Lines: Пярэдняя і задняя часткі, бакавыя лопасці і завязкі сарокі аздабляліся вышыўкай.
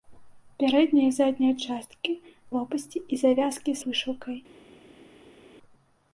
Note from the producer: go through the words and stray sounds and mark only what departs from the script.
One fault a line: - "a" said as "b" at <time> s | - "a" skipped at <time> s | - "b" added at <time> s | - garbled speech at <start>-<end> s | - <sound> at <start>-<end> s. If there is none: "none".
- "бакавыя" skipped at 2.1 s
- "сарокі аздабляліся" skipped at 3.8 s